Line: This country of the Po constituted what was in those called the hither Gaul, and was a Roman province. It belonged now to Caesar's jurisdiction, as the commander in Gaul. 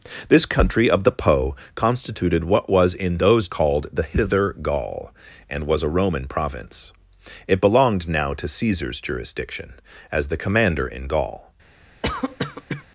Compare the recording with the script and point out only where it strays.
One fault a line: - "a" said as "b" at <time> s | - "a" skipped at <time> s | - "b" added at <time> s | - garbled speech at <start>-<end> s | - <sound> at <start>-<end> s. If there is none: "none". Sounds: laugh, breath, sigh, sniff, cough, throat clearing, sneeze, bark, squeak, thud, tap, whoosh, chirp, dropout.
- cough at 12.0-12.8 s